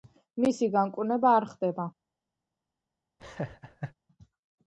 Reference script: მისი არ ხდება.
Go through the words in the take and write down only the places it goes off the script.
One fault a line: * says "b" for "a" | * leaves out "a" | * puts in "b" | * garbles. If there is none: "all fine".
* puts in "განკურნება"